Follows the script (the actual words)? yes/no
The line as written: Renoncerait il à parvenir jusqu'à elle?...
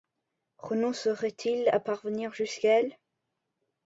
yes